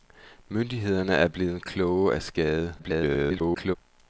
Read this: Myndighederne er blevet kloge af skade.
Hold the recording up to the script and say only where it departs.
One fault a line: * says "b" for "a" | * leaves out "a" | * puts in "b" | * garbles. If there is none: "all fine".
* garbles